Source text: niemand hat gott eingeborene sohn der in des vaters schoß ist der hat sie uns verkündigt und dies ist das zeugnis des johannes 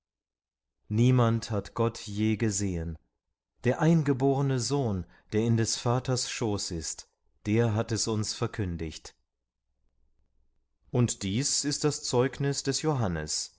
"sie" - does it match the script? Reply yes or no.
no